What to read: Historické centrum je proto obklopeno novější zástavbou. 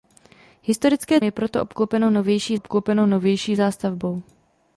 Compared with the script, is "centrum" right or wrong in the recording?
wrong